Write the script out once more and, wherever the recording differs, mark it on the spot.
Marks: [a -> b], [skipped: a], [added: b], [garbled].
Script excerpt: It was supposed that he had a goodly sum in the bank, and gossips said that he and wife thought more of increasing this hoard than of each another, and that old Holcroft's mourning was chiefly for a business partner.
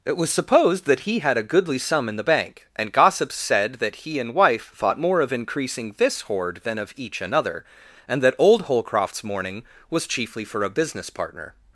It was supposed that he had a goodly sum in the bank, and gossips said that he and wife thought more of increasing this hoard than of each another, and that old Holcroft's mourning was chiefly for a business partner.